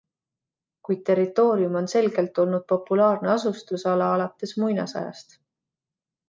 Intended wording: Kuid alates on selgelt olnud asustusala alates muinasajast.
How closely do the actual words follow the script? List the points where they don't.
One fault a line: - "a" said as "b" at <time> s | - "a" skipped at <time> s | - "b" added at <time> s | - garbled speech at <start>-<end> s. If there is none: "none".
- "alates" said as "territoorium" at 1.1 s
- "populaarne" added at 2.7 s